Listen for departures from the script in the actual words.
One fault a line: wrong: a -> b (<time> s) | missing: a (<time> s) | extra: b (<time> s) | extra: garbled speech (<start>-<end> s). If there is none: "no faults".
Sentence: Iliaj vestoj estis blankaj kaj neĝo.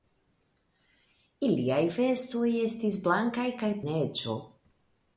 no faults